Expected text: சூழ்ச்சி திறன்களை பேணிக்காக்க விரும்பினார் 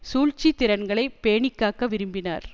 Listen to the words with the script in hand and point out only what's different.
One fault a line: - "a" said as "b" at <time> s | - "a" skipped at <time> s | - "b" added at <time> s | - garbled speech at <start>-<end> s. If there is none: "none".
none